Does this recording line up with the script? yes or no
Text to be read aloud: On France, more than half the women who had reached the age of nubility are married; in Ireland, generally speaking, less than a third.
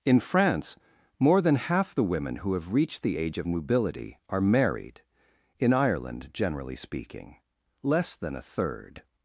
no